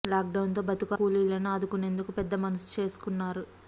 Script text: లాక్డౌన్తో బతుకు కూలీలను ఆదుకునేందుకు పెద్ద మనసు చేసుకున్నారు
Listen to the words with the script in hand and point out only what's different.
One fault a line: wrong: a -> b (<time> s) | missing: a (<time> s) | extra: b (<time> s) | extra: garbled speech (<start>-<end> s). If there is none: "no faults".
no faults